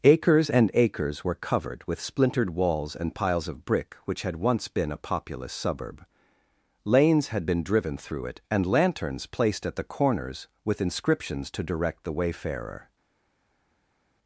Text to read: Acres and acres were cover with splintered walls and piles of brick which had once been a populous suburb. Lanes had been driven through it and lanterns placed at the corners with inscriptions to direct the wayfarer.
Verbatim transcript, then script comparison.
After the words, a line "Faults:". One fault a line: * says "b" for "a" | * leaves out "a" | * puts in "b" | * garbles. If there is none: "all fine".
Acres and acres were covered with splintered walls and piles of brick which had once been a populous suburb. Lanes had been driven through it and lanterns placed at the corners with inscriptions to direct the wayfarer.
Faults:
* says "covered" for "cover"